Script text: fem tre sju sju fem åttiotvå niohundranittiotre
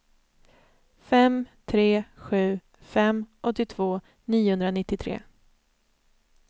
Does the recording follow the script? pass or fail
fail